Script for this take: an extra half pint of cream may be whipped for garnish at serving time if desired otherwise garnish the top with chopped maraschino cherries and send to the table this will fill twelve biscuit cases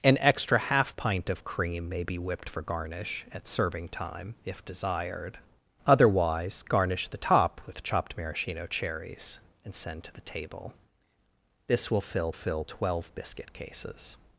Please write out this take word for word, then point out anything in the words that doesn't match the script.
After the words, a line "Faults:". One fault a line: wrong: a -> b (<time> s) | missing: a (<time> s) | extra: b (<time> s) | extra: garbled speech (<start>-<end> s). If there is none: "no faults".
an extra half pint of cream may be whipped for garnish at serving time if desired otherwise garnish the top with chopped maraschino cherries and send to the table this will fill fill twelve biscuit cases
Faults:
extra: fill (12.3 s)